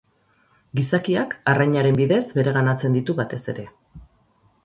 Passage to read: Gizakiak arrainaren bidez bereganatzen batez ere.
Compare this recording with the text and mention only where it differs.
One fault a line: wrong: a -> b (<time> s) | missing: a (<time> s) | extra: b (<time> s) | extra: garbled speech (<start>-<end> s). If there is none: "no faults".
extra: ditu (3.0 s)